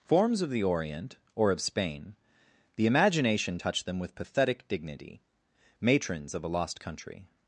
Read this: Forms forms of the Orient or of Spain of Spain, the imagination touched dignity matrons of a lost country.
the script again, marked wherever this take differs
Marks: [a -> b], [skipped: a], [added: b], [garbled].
Forms [skipped: forms] of the Orient or of Spain [skipped: of Spain,] the imagination touched [added: them with pathetic] dignity matrons of a lost country.